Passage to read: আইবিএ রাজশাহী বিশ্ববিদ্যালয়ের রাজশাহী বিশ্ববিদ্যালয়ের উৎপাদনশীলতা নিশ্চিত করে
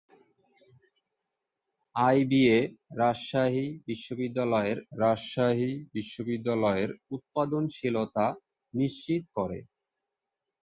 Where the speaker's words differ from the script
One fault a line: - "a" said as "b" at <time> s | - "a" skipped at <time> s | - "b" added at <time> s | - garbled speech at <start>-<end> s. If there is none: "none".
none